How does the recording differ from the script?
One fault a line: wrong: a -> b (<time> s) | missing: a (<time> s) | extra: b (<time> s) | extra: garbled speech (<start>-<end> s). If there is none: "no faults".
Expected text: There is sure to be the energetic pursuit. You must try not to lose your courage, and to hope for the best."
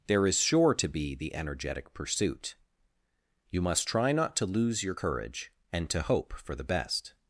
no faults